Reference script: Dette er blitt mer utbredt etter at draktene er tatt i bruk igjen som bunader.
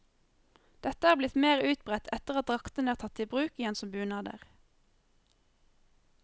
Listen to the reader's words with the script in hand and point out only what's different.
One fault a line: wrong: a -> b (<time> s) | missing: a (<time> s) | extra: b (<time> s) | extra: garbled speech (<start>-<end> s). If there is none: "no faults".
no faults